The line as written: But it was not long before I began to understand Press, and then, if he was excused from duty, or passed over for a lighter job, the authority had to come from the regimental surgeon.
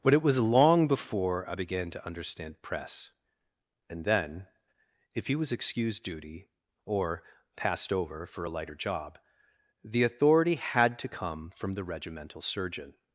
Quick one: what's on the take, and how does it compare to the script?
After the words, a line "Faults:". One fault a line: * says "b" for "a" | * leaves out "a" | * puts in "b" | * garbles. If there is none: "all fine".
But it was long before I began to understand Press, and then, if he was excused duty, or passed over for a lighter job, the authority had to come from the regimental surgeon.
Faults:
* leaves out "not"
* leaves out "from"